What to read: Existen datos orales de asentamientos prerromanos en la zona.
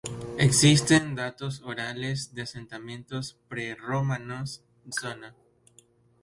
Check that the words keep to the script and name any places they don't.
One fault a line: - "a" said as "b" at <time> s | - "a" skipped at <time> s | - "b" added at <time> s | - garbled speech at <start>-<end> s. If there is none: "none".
- "en la" skipped at 4.7 s